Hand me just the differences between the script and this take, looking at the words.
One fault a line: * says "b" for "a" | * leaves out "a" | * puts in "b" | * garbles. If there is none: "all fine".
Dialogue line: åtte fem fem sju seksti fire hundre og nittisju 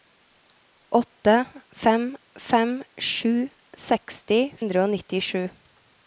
* leaves out "fire"